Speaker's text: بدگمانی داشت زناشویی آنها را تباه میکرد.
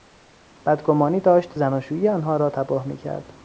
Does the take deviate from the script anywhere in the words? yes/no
no